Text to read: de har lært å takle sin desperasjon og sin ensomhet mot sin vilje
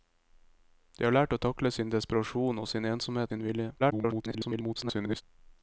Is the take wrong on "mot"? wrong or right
wrong